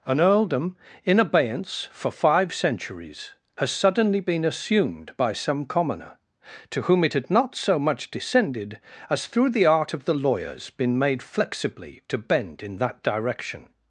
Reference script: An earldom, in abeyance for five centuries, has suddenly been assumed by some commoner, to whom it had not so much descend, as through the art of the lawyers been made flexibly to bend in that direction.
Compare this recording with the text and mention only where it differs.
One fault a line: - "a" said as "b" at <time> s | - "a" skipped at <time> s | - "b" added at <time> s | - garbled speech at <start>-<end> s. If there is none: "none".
- "descend" said as "descended" at 8.1 s